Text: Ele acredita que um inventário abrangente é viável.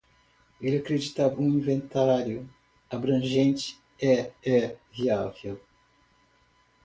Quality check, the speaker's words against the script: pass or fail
fail